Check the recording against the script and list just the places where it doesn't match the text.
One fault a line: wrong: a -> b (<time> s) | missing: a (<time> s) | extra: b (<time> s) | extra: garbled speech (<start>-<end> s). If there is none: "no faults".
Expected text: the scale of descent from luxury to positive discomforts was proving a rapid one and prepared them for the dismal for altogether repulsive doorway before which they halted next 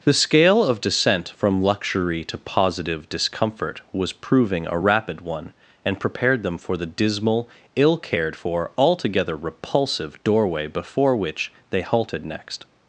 wrong: discomforts -> discomfort (3.1 s)
extra: ill cared (7.8 s)